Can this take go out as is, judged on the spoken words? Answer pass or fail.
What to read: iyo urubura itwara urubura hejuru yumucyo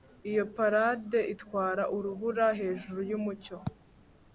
fail